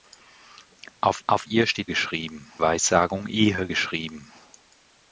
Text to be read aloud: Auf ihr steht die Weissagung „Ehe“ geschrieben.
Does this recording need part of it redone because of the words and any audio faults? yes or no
yes